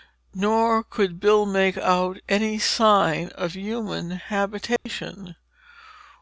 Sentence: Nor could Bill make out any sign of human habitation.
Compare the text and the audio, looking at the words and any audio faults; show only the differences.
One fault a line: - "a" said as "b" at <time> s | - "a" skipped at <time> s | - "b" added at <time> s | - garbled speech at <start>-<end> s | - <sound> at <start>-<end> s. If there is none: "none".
- dropout at 4.8-4.9 s